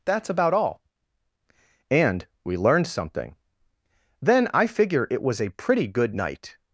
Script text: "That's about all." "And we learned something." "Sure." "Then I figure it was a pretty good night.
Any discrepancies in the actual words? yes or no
yes